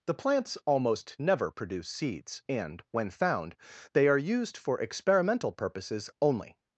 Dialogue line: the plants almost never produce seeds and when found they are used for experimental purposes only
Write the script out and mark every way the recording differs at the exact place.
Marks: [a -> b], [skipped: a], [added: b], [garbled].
the plants almost never produce seeds and when found they are used for experimental purposes only